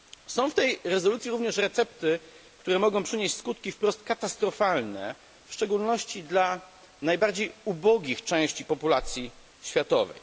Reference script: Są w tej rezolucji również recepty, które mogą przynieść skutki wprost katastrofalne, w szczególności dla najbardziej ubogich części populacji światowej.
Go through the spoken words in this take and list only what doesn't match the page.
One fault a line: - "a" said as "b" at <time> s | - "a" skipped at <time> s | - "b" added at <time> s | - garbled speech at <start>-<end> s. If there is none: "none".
none